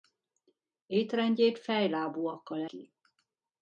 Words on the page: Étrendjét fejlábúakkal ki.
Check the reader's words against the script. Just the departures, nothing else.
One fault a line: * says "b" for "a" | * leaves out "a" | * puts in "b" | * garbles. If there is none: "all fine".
all fine